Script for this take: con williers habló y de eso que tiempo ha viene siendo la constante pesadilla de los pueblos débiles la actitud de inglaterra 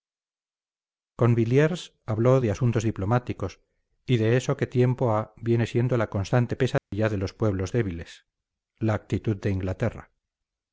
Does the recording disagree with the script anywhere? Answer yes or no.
yes